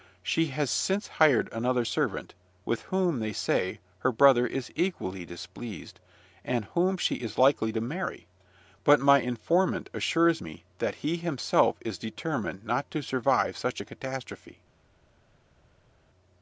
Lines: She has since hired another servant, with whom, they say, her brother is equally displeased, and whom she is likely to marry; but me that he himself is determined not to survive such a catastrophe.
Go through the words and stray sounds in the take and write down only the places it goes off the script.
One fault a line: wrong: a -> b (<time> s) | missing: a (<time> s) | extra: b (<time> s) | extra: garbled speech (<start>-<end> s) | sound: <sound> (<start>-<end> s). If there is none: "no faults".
extra: my informant assures (9.0 s)